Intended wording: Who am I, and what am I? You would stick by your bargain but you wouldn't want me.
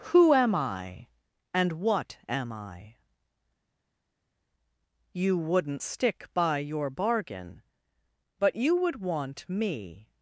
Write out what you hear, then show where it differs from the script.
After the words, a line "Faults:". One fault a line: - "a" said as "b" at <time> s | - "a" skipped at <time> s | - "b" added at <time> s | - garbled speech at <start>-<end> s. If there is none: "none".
Who am I, and what am I? You wouldn't stick by your bargain but you would want me.
Faults:
- "would" said as "wouldn't" at 5.4 s
- "wouldn't" said as "would" at 8.7 s